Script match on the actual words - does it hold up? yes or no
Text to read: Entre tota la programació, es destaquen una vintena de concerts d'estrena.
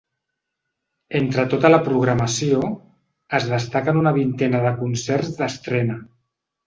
yes